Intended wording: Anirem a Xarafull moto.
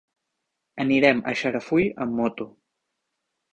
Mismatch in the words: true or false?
true